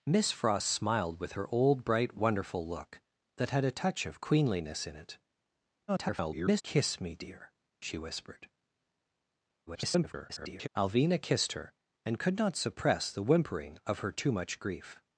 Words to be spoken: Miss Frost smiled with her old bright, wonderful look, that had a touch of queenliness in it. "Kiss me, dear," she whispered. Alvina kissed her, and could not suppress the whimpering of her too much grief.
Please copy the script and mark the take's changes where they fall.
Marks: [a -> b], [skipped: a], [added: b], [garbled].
Miss Frost smiled with her old bright, wonderful look, that had a touch of queenliness in it. [garbled] "Kiss me, dear," she whispered. [garbled] Alvina kissed her, and could not suppress the whimpering of her too much grief.